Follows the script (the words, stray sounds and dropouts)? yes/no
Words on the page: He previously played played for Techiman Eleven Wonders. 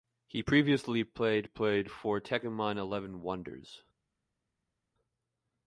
yes